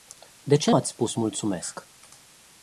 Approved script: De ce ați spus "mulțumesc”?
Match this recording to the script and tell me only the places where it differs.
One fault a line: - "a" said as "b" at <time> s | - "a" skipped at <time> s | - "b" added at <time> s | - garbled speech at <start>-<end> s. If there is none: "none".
none